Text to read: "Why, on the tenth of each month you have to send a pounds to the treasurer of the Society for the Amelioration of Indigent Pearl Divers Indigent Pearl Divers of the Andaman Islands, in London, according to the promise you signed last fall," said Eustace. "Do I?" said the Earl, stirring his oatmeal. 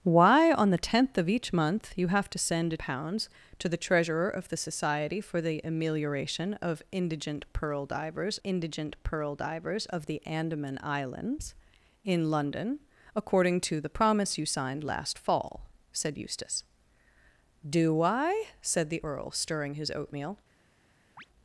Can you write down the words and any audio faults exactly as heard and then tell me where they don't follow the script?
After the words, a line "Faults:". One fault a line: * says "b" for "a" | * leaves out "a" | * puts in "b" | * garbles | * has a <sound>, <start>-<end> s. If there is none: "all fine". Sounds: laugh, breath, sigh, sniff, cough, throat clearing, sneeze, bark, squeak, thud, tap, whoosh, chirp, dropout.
"Why, on the tenth of each month you have to send a pounds to the treasurer of the Society for the Amelioration of Indigent Pearl Divers Indigent Pearl Divers of the Andaman Islands, in London, according to the promise you signed last fall," said Eustace. "Do I?" said the Earl, stirring his oatmeal.
Faults:
* has a chirp, 21.2-21.3 s